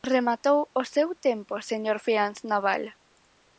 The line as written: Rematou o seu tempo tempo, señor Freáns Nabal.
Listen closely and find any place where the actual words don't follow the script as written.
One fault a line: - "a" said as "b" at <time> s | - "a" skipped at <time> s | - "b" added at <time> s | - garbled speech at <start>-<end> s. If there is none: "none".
- "tempo" skipped at 1.5 s